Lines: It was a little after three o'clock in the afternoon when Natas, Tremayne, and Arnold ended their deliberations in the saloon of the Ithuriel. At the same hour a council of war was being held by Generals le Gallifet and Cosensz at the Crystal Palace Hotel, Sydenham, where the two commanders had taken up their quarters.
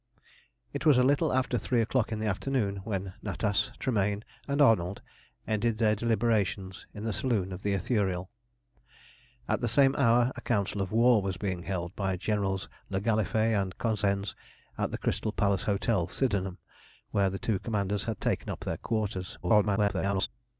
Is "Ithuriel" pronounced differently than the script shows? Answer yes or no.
no